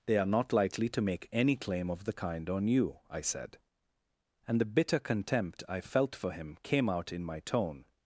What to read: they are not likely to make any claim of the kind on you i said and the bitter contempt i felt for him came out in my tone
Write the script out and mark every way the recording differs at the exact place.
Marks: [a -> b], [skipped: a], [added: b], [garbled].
they are not likely to make any claim of the kind on you i said and the bitter contempt i felt for him came out in my tone